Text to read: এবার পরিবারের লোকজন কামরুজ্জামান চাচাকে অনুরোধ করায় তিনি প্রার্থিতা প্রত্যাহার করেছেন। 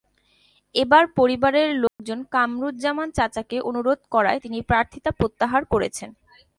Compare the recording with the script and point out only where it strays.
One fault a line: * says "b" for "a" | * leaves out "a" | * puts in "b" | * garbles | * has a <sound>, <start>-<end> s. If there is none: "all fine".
* has a dropout, 1.9-2.0 s